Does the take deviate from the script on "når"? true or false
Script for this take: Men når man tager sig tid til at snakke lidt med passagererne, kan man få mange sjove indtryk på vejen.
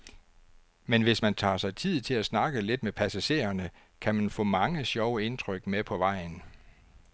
true